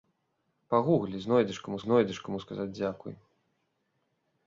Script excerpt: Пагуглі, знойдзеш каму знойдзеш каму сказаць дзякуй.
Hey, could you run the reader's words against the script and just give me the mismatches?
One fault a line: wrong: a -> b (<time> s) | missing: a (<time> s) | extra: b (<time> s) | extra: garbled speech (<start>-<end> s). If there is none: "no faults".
no faults